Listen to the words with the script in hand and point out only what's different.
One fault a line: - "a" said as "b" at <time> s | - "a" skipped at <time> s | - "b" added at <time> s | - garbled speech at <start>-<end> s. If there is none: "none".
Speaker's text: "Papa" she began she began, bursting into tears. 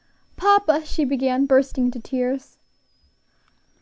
- "she began" skipped at 1.4 s